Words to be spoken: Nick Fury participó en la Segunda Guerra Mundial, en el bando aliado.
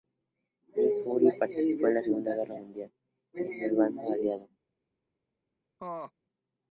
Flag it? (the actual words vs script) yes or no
no